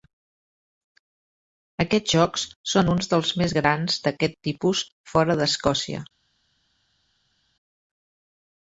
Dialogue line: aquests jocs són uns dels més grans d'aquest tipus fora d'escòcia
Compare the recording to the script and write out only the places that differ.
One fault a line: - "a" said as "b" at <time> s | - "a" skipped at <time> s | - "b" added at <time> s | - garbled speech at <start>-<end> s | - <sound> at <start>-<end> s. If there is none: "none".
none